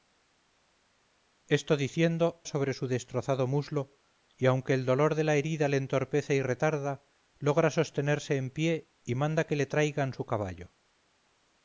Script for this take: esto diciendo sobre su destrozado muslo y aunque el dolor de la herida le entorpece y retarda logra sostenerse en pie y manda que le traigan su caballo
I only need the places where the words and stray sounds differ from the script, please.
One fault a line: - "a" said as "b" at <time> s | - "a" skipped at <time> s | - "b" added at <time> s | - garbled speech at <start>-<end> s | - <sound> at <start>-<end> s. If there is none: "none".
none